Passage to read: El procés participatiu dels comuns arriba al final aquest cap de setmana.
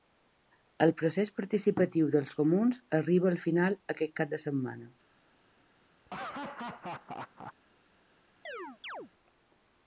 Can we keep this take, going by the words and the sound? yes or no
no